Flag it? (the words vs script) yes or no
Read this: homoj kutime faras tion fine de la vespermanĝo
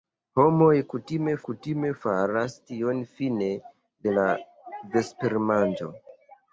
yes